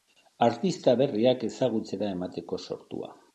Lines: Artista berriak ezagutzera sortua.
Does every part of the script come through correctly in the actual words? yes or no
no